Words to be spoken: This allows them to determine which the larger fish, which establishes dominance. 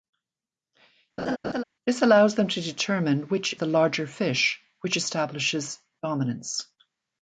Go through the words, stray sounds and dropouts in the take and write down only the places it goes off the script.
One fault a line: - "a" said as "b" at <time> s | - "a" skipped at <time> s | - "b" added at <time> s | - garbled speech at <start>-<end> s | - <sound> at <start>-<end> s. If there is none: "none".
- laugh at 1.2-1.6 s